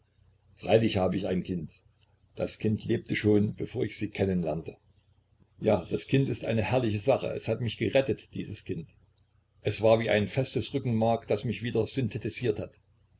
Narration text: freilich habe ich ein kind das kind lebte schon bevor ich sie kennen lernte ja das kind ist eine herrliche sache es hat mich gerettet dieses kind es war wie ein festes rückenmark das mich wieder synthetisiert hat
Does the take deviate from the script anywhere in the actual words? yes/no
no